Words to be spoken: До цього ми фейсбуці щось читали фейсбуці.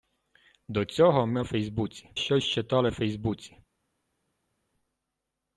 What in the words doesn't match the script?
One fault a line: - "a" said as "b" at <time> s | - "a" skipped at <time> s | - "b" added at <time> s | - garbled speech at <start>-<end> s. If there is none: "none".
none